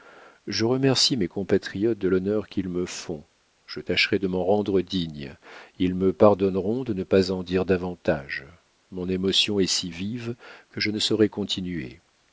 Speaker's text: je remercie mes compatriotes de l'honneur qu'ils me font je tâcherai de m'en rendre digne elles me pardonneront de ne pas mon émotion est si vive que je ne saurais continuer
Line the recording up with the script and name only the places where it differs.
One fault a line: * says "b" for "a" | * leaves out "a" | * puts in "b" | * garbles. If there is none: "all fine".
* says "ils" for "elles"
* puts in "en dire davantage"